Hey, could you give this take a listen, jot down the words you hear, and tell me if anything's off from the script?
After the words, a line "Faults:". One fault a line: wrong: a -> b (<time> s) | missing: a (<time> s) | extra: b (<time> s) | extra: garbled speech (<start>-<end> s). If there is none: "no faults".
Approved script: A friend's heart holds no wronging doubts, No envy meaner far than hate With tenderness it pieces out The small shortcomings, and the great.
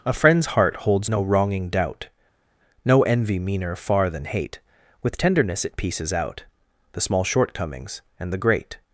A friend's heart holds no wronging doubt, No envy meaner far than hate With tenderness it pieces out The small shortcomings, and the great.
Faults:
wrong: doubts -> doubt (1.7 s)